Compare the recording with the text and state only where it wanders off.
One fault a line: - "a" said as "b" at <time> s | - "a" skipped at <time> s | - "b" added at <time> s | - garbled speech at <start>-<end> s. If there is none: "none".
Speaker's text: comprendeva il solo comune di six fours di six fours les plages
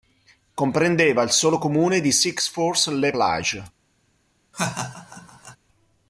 - "di six fours" skipped at 2.9 s